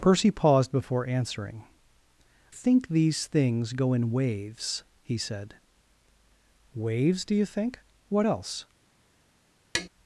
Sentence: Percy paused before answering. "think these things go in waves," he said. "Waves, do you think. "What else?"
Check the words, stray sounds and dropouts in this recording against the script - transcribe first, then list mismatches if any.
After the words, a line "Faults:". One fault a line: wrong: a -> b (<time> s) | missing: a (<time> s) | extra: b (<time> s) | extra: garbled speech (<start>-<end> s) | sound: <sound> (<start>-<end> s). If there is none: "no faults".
Percy paused before answering. "think these things go in waves," he said. "Waves, do you think. "What else?"
Faults:
sound: tap (9.7-9.9 s)